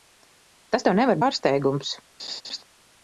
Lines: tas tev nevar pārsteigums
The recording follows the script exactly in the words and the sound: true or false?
false